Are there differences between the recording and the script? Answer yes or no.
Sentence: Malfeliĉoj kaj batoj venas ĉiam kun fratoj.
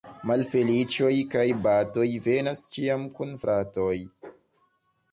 no